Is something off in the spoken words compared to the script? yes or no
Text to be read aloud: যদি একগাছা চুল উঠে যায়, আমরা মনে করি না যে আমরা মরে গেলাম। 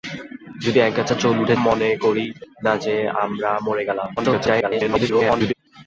yes